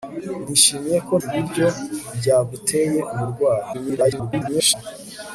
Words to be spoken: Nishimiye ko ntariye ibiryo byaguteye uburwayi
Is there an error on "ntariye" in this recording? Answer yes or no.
yes